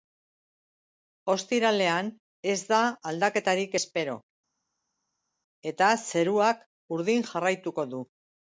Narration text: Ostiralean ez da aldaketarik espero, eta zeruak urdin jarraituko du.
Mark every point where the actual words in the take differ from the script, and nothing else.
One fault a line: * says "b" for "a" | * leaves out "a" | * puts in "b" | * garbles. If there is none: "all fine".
all fine